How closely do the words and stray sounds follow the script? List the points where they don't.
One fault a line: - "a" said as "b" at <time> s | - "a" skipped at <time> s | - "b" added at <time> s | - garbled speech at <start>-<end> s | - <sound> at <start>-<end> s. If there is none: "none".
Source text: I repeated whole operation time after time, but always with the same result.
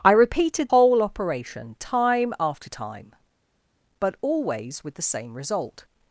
none